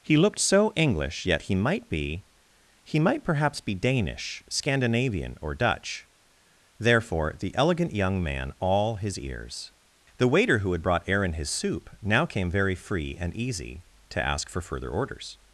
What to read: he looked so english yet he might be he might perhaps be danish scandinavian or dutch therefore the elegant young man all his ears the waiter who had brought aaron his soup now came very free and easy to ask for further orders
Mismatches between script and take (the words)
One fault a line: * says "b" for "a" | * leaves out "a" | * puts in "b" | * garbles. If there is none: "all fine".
all fine